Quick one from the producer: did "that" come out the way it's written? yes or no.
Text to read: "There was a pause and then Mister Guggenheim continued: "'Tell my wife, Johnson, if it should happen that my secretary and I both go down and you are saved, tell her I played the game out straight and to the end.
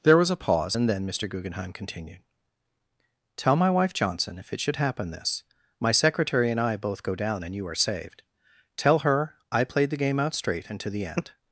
no